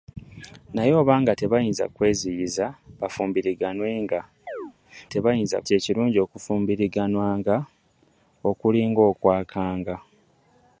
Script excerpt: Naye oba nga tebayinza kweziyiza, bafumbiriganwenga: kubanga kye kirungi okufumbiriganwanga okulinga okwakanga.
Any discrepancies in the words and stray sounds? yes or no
yes